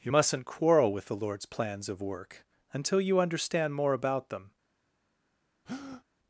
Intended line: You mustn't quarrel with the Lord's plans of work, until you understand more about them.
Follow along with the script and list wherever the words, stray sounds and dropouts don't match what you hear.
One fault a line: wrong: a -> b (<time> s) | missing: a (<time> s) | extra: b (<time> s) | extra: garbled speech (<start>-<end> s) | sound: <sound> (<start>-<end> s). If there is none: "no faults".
sound: breath (5.6-6.0 s)